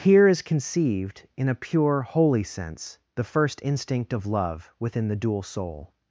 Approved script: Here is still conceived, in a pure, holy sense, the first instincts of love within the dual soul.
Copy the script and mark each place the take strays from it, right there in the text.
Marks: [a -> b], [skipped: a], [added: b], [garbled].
Here is [skipped: still] conceived, in a pure, holy sense, the first [instincts -> instinct] of love within the dual soul.